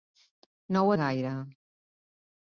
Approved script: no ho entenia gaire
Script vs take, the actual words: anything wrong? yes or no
yes